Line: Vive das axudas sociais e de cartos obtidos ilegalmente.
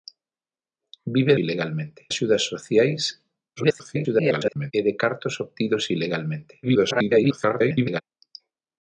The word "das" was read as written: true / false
false